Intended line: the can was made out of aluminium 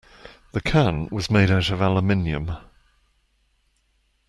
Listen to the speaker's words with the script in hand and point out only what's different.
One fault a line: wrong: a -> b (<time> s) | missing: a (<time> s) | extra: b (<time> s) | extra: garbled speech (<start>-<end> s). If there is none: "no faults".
no faults